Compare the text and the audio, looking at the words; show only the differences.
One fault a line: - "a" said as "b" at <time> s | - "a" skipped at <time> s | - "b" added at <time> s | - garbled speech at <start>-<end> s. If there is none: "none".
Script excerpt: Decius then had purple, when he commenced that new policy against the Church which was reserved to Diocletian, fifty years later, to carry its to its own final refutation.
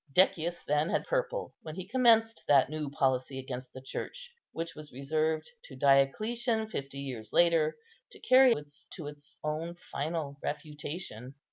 none